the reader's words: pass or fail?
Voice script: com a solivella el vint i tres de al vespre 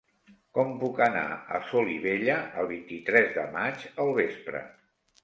fail